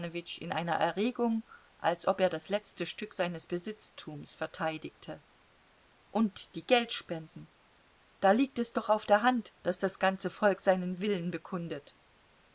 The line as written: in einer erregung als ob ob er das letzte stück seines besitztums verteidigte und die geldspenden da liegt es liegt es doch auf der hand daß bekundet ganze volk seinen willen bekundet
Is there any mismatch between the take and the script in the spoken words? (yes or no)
yes